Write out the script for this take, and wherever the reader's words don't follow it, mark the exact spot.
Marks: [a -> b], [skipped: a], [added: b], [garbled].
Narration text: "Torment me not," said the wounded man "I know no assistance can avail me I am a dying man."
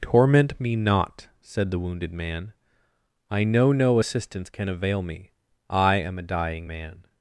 "Torment me not," said the wounded man "I know no assistance can avail me I am a dying man."